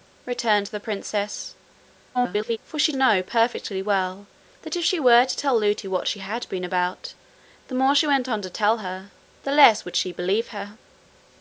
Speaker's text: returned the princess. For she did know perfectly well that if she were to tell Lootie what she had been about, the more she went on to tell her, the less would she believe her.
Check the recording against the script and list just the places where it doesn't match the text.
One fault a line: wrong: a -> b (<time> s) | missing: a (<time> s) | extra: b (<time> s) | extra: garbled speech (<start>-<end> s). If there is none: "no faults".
extra: garbled speech (2.1-2.6 s)
missing: did (2.9 s)